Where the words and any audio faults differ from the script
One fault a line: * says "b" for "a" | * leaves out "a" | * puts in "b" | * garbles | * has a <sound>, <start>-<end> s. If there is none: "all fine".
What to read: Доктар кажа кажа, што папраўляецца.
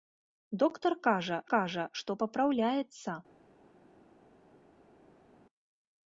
all fine